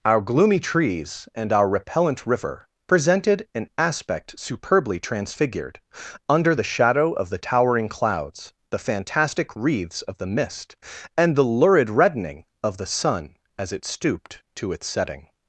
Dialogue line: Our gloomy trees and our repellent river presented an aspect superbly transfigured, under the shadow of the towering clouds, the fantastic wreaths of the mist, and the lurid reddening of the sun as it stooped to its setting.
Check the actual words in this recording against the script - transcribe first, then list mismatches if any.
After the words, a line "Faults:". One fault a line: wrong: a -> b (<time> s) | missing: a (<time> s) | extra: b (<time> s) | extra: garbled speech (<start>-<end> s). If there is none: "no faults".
Our gloomy trees and our repellent river presented an aspect superbly transfigured, under the shadow of the towering clouds, the fantastic wreaths of the mist, and the lurid reddening of the sun as it stooped to its setting.
Faults:
no faults